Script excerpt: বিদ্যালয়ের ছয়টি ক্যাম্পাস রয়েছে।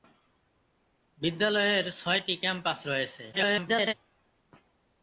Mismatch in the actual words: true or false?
true